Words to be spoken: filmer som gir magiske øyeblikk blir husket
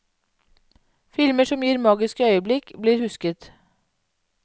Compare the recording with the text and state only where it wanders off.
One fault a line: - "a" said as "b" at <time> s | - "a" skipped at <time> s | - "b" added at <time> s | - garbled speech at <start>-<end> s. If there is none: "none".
none